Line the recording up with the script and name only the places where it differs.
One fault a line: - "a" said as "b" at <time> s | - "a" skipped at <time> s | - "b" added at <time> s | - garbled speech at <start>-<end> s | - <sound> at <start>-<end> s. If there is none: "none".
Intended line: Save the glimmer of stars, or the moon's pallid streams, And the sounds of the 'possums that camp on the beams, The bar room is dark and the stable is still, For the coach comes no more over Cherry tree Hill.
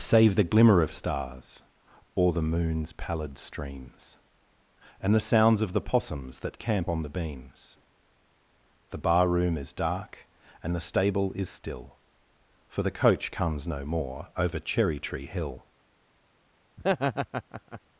- laugh at 16.8-17.8 s